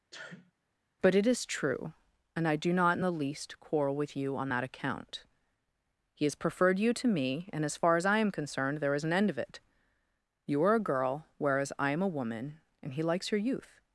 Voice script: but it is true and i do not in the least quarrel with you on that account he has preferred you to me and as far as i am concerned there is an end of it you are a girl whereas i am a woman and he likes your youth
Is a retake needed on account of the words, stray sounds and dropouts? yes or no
yes